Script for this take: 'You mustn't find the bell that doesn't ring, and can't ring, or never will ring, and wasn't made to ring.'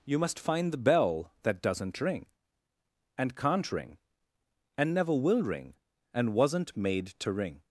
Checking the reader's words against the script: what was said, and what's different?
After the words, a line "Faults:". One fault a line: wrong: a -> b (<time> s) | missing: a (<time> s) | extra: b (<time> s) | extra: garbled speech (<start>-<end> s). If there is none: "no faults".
'You must find the bell that doesn't ring, and can't ring, and never will ring, and wasn't made to ring.'
Faults:
wrong: mustn't -> must (0.2 s)
wrong: or -> and (4.8 s)